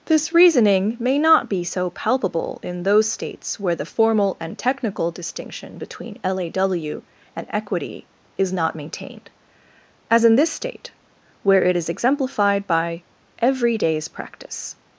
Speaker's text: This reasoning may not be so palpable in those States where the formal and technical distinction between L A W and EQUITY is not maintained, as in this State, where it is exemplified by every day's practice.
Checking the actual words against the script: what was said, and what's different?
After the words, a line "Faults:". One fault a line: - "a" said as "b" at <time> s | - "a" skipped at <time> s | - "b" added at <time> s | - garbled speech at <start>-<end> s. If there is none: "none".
This reasoning may not be so palpable in those States where the formal and technical distinction between L A W and EQUITY is not maintained, as in this State, where it is exemplified by every day's practice.
Faults:
none